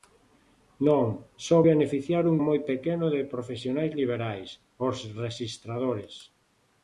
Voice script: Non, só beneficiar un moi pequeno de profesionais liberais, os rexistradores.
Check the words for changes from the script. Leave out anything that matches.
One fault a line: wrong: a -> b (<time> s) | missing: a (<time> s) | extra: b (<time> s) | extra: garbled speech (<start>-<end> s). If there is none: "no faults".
no faults